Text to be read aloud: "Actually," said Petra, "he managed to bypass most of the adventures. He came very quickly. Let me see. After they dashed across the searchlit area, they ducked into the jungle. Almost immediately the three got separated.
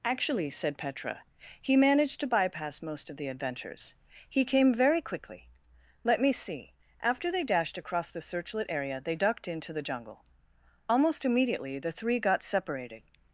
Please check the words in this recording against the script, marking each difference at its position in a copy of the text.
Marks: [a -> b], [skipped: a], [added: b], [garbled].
"Actually," said Petra, "he managed to bypass most of the adventures. He came very quickly. Let me see. After they dashed across the searchlit area, they ducked into the jungle. Almost immediately the three got separated.